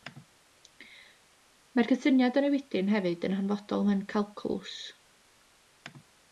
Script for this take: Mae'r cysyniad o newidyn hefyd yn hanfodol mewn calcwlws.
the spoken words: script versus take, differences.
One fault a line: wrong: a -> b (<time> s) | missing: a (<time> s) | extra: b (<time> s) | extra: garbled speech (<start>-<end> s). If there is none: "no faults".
no faults